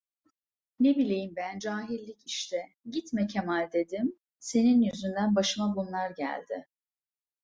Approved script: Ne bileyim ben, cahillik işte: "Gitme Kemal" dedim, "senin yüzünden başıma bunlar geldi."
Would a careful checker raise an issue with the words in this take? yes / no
no